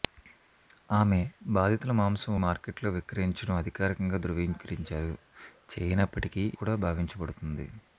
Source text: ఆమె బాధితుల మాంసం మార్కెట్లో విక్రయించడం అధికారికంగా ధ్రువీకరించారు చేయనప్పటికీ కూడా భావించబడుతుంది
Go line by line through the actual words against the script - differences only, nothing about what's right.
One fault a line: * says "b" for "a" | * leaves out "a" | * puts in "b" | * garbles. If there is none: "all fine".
all fine